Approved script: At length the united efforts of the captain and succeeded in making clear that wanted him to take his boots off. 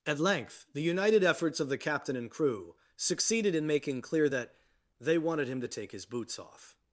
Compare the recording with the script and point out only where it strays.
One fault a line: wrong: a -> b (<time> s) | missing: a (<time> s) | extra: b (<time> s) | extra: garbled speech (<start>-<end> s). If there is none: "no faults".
extra: crew (2.3 s)
extra: they (5.0 s)